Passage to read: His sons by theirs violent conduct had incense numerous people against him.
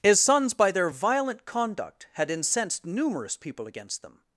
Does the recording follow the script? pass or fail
fail